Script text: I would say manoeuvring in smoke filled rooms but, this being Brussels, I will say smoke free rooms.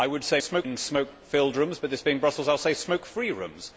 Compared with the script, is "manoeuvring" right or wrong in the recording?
wrong